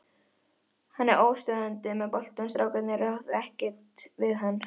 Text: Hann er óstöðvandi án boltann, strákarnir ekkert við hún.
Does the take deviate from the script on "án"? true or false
true